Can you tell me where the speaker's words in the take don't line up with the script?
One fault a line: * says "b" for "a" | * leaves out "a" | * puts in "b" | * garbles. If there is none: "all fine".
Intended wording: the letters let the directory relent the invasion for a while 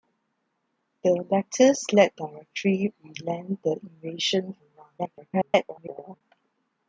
* leaves out "the"
* leaves out "for"
* garbles